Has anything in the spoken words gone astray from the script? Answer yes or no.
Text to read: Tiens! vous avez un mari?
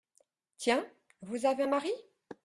no